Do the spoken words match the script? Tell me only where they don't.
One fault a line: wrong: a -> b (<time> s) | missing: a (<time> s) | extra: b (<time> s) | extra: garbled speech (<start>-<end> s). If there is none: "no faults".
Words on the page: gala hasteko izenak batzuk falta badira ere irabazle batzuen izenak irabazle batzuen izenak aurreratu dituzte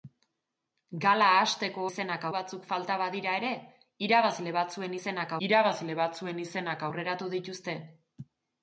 no faults